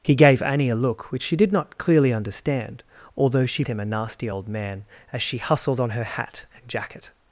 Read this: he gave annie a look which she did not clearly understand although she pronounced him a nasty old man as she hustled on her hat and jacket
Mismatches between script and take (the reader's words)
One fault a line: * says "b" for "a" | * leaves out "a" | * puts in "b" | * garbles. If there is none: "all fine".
* leaves out "pronounced"